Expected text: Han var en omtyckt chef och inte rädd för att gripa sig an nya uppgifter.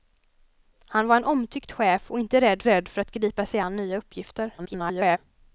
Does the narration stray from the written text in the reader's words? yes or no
yes